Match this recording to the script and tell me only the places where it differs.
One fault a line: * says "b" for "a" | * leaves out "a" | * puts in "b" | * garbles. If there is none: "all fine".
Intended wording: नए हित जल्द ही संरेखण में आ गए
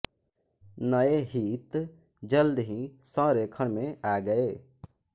all fine